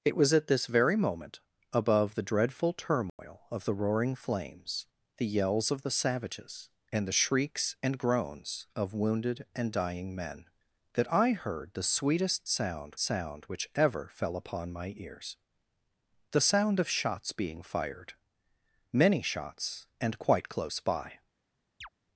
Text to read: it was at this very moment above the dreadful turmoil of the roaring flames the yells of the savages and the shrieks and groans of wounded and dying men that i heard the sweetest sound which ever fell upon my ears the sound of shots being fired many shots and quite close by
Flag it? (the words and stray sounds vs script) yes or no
yes